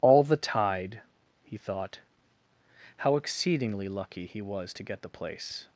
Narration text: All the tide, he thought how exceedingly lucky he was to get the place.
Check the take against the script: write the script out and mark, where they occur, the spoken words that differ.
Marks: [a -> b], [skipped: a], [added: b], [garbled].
All the tide, he thought how exceedingly lucky he was to get the place.